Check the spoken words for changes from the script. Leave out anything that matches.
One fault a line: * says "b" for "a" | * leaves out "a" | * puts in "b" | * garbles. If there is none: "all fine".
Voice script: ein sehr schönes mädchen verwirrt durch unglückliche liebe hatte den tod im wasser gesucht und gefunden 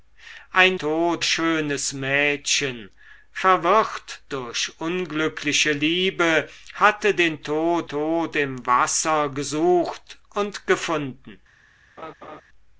* says "tod" for "sehr"
* puts in "tod"